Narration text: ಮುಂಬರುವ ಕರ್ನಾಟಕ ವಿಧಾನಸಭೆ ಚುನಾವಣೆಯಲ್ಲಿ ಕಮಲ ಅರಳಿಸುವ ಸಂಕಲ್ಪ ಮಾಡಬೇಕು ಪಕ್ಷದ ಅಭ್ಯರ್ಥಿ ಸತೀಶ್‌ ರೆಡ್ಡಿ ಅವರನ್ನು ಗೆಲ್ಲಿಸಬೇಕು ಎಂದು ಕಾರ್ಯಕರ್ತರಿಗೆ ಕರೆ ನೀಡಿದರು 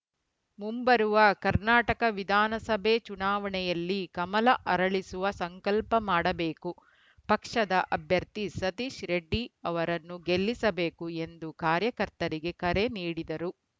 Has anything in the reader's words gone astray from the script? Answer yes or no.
no